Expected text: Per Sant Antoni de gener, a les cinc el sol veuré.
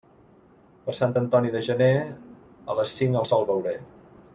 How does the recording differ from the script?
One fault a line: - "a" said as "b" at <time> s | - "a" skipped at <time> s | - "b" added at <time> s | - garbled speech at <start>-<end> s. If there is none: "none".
none